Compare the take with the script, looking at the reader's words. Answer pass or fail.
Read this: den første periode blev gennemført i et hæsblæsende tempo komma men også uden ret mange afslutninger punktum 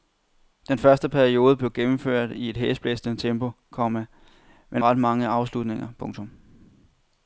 fail